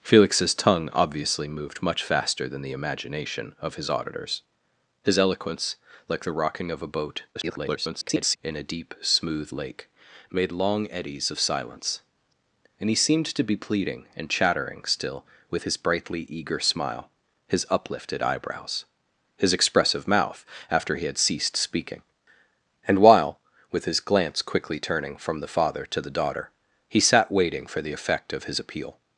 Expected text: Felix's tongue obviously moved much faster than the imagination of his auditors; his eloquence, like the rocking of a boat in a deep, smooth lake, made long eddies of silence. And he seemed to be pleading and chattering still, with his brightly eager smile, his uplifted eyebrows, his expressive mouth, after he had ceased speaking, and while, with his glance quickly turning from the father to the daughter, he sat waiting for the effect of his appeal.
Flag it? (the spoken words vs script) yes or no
yes